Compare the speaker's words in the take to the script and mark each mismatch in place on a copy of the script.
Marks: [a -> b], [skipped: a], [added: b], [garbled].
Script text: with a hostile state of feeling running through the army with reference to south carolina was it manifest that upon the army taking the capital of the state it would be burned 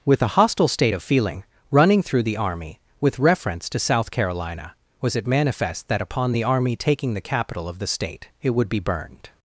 with a hostile state of feeling running through the army with reference to south carolina was it manifest that upon the army taking the capital of the state it would be burned